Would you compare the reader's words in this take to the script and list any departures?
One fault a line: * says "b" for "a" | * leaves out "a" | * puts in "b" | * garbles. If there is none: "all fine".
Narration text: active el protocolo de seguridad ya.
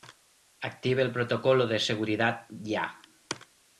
all fine